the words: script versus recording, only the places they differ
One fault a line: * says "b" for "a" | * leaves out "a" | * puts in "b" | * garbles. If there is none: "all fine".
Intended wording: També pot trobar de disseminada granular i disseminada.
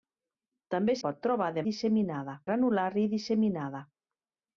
all fine